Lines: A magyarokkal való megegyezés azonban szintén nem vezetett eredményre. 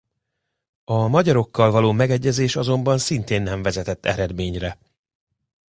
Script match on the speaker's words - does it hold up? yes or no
yes